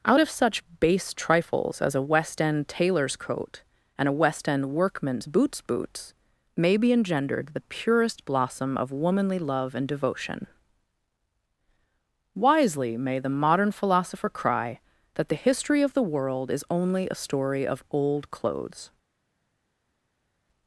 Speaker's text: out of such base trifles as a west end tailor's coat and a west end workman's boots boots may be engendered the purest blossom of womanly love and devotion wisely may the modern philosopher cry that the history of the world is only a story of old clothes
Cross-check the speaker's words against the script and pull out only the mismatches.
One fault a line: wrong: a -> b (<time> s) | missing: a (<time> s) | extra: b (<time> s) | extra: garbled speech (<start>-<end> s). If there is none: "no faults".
no faults